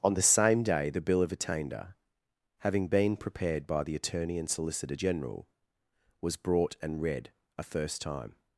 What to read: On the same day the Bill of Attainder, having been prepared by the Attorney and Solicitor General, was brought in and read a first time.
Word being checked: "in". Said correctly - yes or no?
no